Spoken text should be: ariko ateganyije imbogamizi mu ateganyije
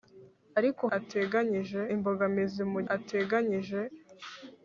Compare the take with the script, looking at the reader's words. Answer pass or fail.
pass